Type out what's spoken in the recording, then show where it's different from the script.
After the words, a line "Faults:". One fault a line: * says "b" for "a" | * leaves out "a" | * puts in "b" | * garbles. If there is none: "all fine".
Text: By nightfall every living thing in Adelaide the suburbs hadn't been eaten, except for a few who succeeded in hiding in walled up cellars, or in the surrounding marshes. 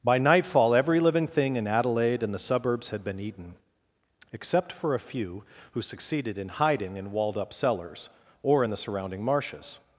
By nightfall every living thing in Adelaide and the suburbs had been eaten, except for a few who succeeded in hiding in walled up cellars, or in the surrounding marshes.
Faults:
* puts in "and"
* says "had" for "hadn't"